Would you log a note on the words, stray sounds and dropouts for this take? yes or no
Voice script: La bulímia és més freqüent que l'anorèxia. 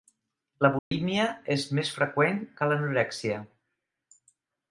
yes